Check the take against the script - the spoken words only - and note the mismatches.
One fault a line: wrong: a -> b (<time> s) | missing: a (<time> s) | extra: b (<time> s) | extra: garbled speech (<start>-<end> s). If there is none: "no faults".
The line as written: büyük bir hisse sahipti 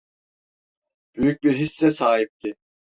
no faults